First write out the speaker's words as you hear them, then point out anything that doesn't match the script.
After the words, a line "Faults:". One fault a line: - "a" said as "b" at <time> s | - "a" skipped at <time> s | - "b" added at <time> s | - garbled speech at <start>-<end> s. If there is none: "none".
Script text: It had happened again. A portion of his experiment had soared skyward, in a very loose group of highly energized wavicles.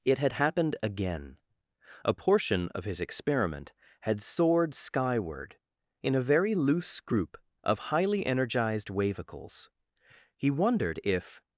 It had happened again. A portion of his experiment had soared skyward, in a very loose group of highly energized wavicles. He wondered if
Faults:
- "He wondered if" added at 10.4 s